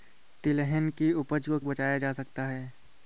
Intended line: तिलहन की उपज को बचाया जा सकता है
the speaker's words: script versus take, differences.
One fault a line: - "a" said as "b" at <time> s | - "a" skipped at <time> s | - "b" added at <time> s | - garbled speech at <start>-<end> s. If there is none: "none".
none